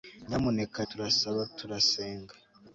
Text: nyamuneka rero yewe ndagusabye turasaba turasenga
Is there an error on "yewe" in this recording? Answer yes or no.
yes